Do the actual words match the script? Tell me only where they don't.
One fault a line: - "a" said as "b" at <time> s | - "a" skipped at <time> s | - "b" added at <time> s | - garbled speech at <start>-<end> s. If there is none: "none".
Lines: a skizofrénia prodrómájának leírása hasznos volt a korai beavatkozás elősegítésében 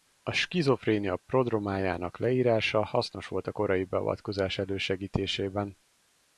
none